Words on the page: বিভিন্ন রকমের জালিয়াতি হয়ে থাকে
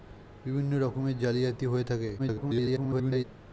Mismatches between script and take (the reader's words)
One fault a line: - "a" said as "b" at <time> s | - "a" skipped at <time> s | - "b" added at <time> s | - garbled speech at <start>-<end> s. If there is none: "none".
- garbled speech at 2.2-3.2 s